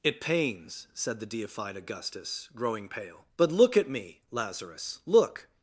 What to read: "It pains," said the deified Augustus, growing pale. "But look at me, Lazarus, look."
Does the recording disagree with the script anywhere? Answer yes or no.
no